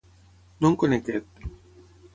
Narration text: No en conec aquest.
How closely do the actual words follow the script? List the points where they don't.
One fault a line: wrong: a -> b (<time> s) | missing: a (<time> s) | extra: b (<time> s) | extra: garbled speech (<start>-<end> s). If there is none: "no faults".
no faults